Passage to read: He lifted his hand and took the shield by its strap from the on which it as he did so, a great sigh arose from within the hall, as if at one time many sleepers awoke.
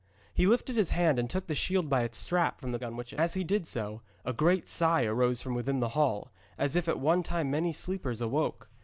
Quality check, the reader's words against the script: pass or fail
pass